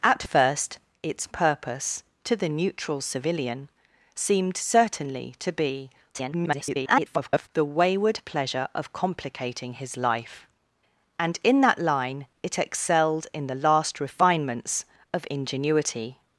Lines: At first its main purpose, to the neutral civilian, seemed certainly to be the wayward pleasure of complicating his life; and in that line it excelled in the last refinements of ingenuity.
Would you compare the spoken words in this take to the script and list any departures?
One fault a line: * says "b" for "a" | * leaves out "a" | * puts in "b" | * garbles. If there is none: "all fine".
* leaves out "main"
* garbles